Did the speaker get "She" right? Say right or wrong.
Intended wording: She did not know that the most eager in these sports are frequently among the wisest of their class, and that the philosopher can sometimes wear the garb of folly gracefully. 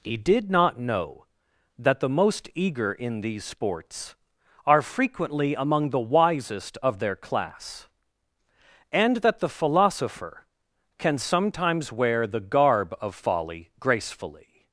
wrong